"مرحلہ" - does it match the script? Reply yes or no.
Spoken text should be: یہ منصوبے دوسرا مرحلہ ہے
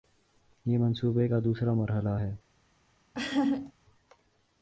yes